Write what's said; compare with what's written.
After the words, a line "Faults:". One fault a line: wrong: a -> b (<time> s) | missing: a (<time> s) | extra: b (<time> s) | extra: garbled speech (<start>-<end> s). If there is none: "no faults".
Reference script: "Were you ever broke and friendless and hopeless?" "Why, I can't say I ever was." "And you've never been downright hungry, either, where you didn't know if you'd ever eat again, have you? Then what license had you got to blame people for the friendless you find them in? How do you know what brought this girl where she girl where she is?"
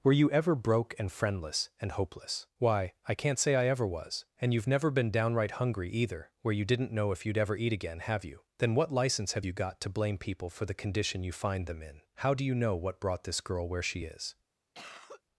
"Were you ever broke and friendless and hopeless?" "Why, I can't say I ever was." "And you've never been downright hungry, either, where you didn't know if you'd ever eat again, have you? Then what license have you got to blame people for the condition you find them in? How do you know what brought this girl where she is?"
Faults:
wrong: had -> have (9.3 s)
wrong: friendless -> condition (10.7 s)
missing: girl where she (14.0 s)